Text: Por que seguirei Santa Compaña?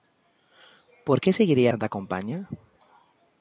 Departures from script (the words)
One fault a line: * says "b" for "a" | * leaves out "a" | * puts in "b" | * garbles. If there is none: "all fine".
all fine